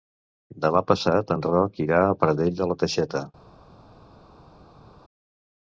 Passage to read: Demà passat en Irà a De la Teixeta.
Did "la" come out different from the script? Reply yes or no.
no